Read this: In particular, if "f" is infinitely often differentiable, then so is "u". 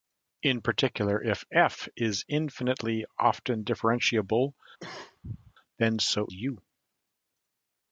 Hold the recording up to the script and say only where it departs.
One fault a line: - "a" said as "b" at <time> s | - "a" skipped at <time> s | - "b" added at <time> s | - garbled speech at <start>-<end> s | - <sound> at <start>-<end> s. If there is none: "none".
- cough at 4.8-5.5 s
- "is" skipped at 6.3 s